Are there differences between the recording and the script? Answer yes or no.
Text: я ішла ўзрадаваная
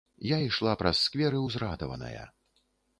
yes